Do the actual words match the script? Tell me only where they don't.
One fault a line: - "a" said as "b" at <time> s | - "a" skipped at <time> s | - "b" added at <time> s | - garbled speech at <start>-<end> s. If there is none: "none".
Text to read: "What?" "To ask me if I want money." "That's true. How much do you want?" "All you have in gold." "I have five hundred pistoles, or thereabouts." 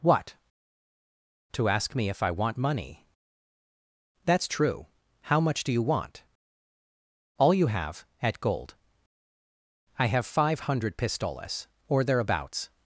- "in" said as "at" at 8.2 s